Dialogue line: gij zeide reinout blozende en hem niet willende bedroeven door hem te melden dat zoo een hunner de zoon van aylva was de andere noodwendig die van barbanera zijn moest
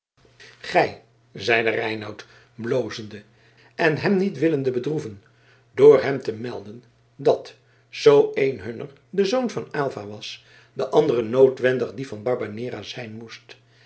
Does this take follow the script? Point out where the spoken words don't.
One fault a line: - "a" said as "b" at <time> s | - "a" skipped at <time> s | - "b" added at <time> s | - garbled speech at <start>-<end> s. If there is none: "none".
none